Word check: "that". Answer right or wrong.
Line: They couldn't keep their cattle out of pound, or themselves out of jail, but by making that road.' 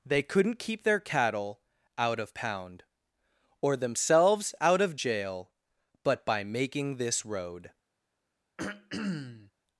wrong